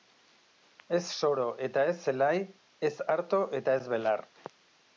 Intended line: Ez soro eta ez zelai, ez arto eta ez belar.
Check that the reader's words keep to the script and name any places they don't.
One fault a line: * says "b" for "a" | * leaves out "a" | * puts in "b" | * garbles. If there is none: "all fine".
all fine